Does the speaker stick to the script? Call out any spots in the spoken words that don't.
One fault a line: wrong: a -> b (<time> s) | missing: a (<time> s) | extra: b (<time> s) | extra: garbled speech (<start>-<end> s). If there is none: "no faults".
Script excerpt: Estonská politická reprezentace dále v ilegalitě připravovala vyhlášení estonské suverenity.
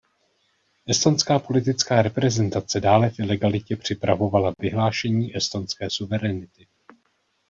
no faults